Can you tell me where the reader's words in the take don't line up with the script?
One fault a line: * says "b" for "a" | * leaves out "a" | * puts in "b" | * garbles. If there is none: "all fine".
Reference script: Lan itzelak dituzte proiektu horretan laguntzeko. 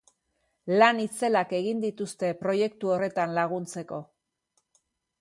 * puts in "egin"